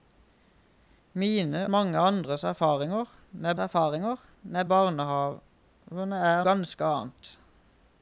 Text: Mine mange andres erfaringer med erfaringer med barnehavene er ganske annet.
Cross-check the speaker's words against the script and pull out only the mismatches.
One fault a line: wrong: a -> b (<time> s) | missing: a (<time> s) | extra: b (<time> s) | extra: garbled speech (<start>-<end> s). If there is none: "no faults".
no faults